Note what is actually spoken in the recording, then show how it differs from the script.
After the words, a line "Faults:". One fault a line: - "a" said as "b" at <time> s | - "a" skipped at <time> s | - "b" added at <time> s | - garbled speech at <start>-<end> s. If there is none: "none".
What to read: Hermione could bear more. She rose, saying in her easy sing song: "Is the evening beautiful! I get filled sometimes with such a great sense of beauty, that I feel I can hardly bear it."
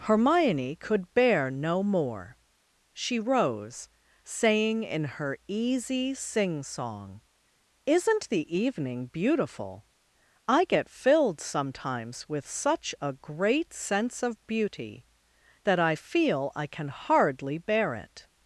Hermione could bear no more. She rose, saying in her easy sing song: "Isn't the evening beautiful! I get filled sometimes with such a great sense of beauty, that I feel I can hardly bear it."
Faults:
- "no" added at 1.5 s
- "Is" said as "Isn't" at 7.9 s